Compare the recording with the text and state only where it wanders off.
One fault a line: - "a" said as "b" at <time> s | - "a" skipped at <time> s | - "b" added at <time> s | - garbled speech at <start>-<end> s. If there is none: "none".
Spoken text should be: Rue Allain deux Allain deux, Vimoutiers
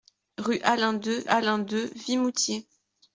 none